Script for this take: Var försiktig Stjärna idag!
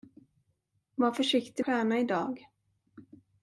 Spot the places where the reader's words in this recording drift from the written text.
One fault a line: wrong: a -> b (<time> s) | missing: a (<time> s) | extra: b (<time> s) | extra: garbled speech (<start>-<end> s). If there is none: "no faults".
no faults